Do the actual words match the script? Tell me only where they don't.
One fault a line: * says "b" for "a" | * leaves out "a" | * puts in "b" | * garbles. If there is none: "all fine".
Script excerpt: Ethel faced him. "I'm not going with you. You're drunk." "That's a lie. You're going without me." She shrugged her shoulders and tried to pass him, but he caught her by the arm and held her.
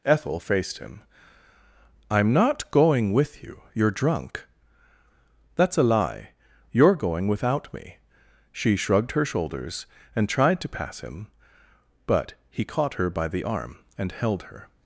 all fine